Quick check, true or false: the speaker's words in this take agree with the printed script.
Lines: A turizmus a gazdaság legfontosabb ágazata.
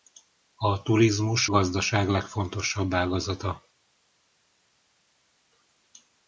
false